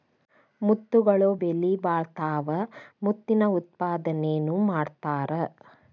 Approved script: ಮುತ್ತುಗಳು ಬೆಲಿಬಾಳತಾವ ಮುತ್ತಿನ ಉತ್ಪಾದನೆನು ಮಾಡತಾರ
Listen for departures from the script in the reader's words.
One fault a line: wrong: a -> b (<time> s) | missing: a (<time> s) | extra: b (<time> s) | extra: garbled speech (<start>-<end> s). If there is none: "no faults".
no faults